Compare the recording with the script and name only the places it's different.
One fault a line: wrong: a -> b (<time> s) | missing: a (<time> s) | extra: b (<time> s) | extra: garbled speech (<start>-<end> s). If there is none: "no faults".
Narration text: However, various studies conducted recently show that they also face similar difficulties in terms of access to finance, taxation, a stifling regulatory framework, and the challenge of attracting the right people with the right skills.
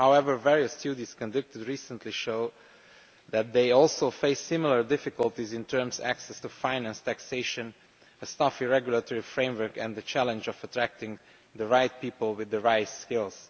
no faults